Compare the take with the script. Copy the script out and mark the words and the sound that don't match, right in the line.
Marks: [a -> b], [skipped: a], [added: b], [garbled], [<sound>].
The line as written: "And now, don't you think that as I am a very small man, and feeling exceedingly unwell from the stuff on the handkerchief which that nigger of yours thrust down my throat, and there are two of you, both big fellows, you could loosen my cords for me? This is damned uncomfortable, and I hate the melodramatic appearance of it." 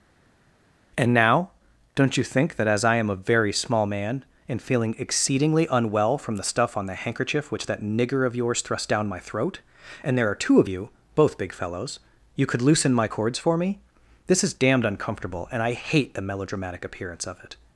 "And now, don't you think that as I am a very small man, and feeling exceedingly unwell from the stuff on the handkerchief which that nigger of yours thrust down my throat, and there are two of you, both big fellows, you could loosen my cords for me? This is damned uncomfortable, and I hate the melodramatic appearance of it."